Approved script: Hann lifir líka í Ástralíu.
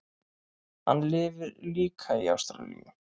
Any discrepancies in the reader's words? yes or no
no